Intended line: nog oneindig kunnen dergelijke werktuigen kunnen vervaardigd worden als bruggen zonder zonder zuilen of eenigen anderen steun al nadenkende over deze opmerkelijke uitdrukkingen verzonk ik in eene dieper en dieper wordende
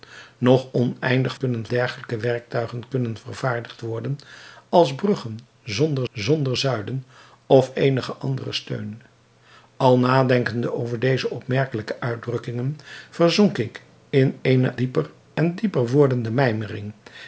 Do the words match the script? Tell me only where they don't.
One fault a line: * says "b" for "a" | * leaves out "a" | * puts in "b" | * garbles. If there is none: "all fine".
all fine